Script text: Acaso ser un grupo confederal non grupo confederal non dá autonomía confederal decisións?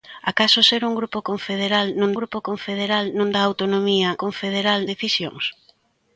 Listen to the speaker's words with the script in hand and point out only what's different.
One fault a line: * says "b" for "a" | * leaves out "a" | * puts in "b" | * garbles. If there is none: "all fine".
all fine